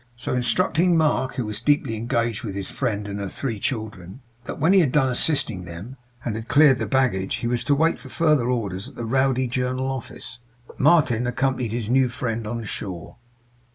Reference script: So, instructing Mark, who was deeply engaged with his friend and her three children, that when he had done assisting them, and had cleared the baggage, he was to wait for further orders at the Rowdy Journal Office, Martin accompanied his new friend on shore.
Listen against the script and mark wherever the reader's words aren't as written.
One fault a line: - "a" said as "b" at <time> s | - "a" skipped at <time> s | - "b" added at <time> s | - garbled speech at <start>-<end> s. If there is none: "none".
none